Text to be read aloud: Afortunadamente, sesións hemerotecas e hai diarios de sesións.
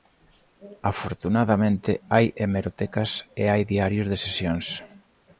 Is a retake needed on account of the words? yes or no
yes